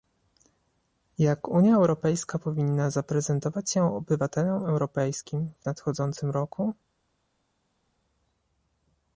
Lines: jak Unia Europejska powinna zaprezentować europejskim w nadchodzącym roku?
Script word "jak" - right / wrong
right